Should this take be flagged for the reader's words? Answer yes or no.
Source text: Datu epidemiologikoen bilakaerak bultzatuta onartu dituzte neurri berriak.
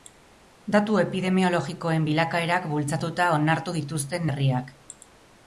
yes